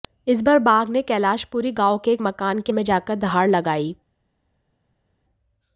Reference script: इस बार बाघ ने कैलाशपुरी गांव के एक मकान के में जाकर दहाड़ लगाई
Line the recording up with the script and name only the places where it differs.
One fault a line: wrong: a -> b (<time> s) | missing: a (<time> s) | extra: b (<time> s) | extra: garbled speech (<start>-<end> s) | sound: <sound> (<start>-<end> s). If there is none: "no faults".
no faults